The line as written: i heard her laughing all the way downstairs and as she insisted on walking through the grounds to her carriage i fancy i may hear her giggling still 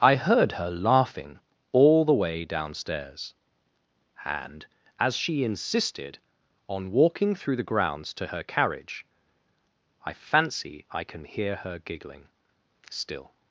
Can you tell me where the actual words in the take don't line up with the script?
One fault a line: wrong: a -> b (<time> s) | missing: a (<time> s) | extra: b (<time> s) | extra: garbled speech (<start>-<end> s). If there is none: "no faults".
wrong: may -> can (11.0 s)